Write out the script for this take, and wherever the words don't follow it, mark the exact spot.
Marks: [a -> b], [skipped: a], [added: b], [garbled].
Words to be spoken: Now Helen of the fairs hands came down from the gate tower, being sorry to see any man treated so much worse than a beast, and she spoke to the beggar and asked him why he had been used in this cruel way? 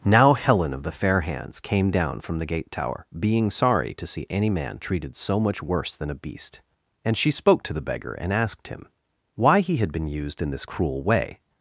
Now Helen of the [fairs -> fair] hands came down from the gate tower, being sorry to see any man treated so much worse than a beast, and she spoke to the beggar and asked him why he had been used in this cruel way?